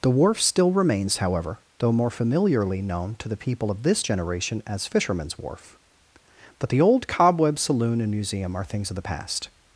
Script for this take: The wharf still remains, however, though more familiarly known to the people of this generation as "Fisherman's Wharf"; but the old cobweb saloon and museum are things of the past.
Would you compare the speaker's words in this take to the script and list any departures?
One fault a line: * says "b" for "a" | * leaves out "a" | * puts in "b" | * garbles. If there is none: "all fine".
all fine